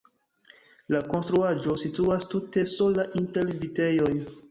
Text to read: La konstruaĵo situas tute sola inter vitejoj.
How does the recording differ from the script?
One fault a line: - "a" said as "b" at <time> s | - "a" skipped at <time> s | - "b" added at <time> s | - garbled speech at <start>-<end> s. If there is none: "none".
none